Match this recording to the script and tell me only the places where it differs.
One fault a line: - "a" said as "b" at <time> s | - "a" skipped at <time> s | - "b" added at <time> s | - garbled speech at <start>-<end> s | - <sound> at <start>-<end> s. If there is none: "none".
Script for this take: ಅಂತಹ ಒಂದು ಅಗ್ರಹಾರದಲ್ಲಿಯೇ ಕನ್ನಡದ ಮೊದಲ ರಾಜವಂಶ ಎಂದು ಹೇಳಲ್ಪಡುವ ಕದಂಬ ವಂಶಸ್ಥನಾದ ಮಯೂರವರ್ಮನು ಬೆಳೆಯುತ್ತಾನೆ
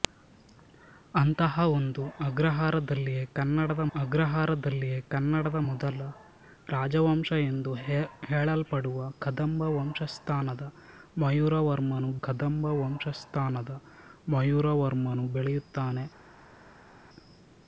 - "ಅಗ್ರಹಾರದಲ್ಲಿಯೇ ಕನ್ನಡದ" added at 3.9 s
- "ಕದಂಬ ವಂಶಸ್ಥನಾದ ಮಯೂರವರ್ಮನು" added at 12.2 s